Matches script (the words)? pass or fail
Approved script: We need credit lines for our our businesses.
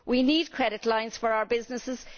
fail